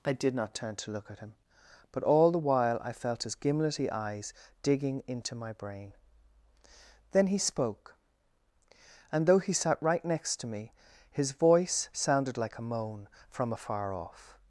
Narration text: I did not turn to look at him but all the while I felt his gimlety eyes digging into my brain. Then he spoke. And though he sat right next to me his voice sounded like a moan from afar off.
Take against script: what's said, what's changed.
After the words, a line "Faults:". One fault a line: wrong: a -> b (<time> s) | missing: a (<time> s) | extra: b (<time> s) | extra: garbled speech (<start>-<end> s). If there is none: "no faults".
I did not turn to look at him but all the while I felt his gimlety eyes digging into my brain. Then he spoke. And though he sat right next to me his voice sounded like a moan from afar off.
Faults:
no faults